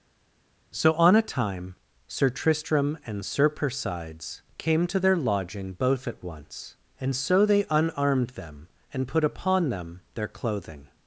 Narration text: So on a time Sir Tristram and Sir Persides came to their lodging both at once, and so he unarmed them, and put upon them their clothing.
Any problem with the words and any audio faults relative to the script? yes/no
yes